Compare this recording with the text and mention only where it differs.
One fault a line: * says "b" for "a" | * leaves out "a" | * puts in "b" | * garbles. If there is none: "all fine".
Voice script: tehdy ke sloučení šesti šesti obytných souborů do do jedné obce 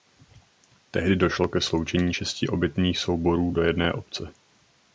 * puts in "došlo"
* leaves out "šesti"
* leaves out "do"